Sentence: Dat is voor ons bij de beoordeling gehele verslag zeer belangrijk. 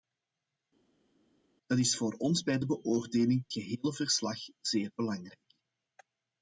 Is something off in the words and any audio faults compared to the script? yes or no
no